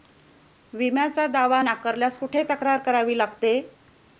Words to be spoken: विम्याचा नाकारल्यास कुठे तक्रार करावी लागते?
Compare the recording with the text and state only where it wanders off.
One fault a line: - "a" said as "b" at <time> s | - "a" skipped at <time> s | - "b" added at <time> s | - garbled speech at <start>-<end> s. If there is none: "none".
- "दावा" added at 1.3 s